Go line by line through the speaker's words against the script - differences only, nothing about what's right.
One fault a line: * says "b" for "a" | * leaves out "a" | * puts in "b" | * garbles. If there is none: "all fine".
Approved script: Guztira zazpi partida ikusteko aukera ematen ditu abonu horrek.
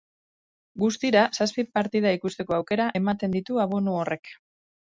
all fine